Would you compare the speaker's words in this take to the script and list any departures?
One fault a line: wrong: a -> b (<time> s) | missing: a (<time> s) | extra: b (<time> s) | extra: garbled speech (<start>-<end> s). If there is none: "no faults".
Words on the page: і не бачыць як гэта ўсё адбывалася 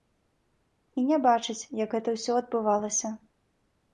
no faults